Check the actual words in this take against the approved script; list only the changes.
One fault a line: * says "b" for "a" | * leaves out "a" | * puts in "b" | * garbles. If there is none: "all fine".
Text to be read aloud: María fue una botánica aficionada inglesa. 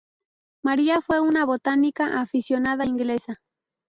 all fine